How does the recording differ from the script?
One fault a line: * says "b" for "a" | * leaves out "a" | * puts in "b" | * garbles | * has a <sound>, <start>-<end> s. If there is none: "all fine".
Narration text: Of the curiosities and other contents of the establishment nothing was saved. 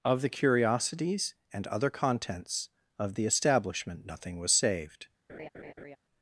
* has a laugh, 5.3-6.0 s